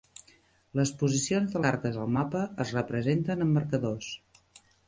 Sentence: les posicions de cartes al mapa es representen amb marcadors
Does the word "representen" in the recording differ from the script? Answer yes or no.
no